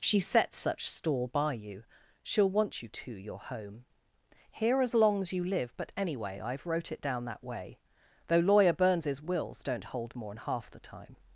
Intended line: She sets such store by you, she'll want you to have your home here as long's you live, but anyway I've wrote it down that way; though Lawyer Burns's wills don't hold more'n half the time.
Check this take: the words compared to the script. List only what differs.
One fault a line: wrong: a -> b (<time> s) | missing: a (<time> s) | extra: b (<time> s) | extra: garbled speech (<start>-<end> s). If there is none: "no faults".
missing: have (3.1 s)